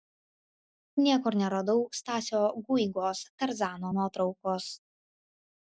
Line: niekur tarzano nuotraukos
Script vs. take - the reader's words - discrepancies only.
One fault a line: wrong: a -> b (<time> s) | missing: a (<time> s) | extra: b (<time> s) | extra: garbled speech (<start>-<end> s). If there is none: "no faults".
extra: neradau stasio guigos (1.4 s)